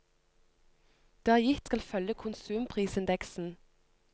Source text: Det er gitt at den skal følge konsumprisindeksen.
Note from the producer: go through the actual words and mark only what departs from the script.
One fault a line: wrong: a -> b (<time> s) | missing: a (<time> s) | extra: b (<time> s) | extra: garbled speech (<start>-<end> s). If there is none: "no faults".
missing: at den (1.7 s)